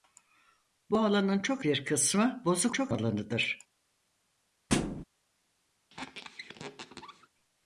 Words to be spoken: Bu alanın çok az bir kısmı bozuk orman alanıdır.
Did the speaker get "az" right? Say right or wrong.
wrong